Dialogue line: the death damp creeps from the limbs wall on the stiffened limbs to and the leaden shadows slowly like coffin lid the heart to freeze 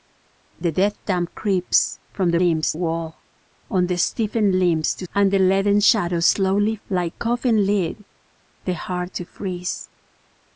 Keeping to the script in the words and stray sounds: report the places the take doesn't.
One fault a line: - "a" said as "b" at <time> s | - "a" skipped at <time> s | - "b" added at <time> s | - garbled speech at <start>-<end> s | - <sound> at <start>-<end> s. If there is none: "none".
none